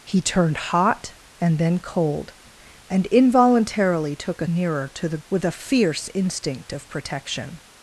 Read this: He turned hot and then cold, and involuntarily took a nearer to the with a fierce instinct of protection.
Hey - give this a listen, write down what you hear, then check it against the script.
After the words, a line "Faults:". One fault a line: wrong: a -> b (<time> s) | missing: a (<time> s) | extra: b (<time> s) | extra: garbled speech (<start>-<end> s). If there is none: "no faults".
He turned hot and then cold, and involuntarily took a nearer to the with a fierce instinct of protection.
Faults:
no faults